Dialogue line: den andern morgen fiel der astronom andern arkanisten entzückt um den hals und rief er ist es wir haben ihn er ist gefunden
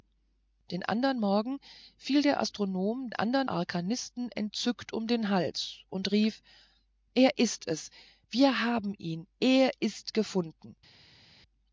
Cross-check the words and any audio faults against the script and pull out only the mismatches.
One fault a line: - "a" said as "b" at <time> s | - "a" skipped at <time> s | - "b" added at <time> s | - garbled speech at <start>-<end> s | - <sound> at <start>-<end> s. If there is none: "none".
none